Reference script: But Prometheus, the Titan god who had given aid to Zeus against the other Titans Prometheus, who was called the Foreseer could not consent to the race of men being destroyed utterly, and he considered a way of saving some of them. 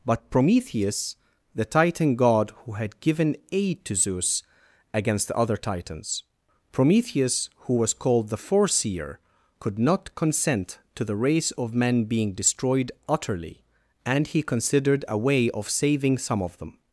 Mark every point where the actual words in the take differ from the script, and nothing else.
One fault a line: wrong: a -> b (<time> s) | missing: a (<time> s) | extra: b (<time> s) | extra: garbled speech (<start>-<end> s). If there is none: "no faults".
no faults